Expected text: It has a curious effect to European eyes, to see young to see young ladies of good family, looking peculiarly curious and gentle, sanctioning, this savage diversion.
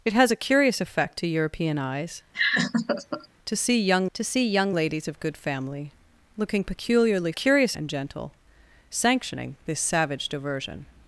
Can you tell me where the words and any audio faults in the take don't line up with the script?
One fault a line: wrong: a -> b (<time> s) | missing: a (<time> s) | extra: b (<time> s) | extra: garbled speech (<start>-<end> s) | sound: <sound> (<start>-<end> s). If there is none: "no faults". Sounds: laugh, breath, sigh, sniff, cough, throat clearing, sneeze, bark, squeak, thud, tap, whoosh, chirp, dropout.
sound: laugh (2.3-3.3 s)